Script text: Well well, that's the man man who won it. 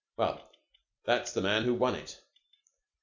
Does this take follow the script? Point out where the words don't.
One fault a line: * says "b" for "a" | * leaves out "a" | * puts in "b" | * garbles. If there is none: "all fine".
* leaves out "well"
* leaves out "man"